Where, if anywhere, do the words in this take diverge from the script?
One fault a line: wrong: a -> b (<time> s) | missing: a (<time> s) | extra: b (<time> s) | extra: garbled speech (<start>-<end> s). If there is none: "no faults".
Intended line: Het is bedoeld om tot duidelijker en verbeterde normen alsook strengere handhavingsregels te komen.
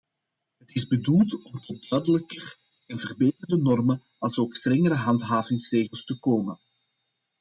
no faults